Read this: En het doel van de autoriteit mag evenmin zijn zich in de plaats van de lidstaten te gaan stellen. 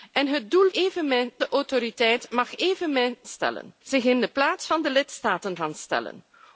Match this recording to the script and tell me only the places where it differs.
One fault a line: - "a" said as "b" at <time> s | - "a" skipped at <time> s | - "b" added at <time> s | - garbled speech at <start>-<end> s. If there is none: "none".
- "van" said as "evenmin" at 0.7 s
- "zijn" said as "stellen" at 3.2 s
- "te" skipped at 5.6 s